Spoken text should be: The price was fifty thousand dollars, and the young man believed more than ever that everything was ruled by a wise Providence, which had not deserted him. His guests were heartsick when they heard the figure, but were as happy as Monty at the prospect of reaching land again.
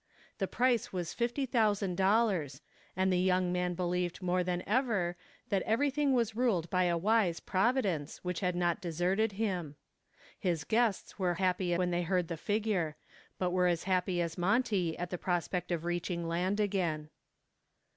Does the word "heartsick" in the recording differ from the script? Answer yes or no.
yes